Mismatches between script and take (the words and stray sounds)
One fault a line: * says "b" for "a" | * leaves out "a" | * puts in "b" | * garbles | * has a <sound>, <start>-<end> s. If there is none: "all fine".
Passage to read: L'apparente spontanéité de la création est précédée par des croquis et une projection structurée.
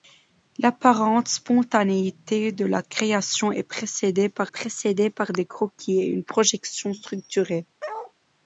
* puts in "précédée par"
* has a bark, 7.8-8.1 s